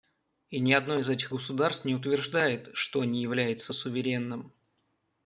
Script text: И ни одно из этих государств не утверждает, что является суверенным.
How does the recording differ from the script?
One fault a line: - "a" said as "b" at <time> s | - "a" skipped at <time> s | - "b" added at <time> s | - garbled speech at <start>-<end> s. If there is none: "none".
- "не" added at 3.0 s